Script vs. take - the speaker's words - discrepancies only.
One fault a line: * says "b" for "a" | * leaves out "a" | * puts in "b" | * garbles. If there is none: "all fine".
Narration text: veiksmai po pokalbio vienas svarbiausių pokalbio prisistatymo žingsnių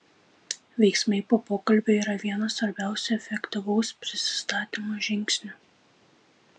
* puts in "yra"
* says "efektyvaus" for "pokalbio"